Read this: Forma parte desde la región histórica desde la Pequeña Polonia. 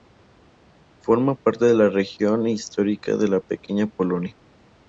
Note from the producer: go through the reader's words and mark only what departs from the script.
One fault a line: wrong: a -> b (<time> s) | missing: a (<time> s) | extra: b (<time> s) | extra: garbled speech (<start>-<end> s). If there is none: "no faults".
wrong: desde -> de (1.6 s)
wrong: desde -> de (3.2 s)